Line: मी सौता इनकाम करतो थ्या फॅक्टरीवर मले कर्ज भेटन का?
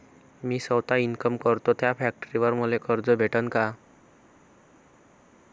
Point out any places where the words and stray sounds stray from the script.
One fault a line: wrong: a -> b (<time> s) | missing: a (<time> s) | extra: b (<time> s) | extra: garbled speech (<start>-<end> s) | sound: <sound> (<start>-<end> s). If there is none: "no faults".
no faults